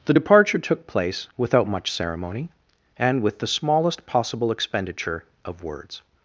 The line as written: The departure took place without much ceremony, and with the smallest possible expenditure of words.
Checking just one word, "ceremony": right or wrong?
right